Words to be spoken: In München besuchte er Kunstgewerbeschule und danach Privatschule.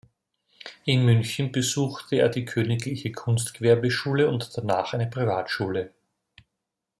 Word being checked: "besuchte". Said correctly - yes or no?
yes